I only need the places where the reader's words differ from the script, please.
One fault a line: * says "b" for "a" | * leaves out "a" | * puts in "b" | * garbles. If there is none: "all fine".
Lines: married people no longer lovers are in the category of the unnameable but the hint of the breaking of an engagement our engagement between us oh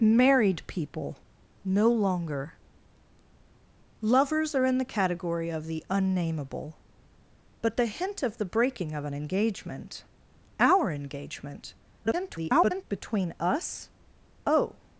* garbles